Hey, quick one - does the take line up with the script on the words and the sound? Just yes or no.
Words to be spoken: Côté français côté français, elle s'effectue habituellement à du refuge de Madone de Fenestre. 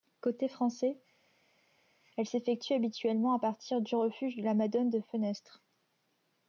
no